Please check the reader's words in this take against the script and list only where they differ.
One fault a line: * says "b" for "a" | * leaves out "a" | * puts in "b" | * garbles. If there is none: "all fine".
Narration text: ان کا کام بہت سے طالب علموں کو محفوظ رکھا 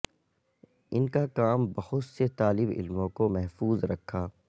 all fine